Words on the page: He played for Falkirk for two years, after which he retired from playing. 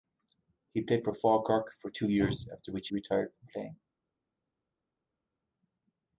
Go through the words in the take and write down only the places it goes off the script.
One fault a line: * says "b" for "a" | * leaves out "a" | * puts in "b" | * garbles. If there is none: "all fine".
all fine